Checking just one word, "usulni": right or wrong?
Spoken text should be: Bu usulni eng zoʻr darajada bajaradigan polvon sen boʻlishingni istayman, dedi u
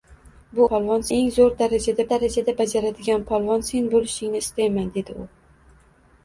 wrong